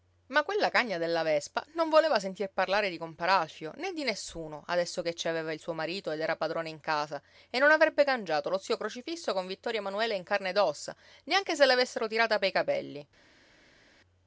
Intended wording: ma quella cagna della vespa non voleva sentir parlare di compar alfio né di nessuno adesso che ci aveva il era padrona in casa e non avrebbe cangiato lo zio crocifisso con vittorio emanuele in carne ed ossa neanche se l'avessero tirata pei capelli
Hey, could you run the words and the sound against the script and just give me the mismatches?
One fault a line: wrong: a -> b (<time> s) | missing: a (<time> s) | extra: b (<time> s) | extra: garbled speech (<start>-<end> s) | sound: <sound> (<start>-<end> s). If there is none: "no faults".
extra: suo marito ed (5.6 s)